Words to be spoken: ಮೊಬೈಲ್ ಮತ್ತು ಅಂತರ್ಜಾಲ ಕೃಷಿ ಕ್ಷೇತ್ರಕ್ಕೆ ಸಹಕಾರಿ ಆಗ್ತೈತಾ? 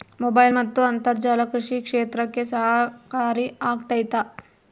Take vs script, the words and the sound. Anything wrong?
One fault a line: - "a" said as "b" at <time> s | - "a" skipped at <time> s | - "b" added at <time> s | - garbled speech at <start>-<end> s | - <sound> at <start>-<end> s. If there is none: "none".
none